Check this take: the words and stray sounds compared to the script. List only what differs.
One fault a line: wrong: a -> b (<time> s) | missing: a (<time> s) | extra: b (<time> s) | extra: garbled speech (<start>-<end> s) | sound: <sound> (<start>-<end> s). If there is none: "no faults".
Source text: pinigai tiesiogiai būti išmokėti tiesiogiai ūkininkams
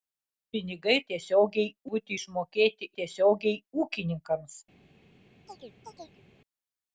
sound: chirp (5.5-6.2 s)